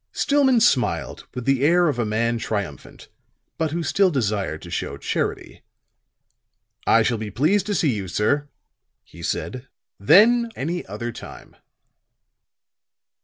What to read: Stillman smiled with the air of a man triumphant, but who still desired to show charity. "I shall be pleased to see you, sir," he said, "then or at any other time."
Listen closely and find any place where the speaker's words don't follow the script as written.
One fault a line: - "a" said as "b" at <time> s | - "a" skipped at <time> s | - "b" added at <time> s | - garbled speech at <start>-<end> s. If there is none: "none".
- "or at" skipped at 10.5 s